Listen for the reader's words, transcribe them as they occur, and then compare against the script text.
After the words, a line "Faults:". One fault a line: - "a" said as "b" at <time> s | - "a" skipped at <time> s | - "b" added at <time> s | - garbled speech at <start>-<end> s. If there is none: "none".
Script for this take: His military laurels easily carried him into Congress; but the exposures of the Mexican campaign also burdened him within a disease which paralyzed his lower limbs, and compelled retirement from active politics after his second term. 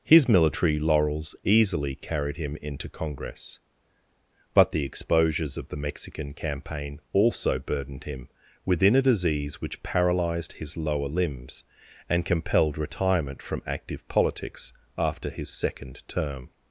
His military laurels easily carried him into Congress; but the exposures of the Mexican campaign also burdened him within a disease which paralyzed his lower limbs, and compelled retirement from active politics after his second term.
Faults:
none